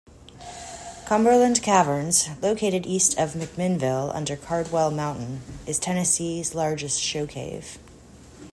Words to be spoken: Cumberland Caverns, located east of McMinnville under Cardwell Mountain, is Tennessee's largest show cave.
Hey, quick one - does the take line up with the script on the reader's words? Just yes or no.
yes